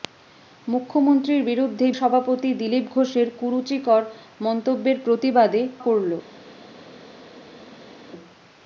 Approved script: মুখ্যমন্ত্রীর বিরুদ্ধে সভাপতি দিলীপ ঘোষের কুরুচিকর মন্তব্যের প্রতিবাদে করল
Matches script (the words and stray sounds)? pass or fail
pass